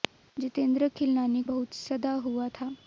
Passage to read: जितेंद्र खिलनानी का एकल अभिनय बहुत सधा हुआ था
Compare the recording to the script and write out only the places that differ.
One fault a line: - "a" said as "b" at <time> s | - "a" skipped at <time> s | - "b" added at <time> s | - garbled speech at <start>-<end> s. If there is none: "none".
- "का एकल अभिनय" skipped at 1.4 s